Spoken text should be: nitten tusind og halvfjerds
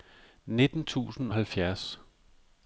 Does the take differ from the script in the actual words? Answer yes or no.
yes